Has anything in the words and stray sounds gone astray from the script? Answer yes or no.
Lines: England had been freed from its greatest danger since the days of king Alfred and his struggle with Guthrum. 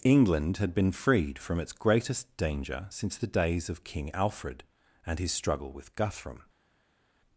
no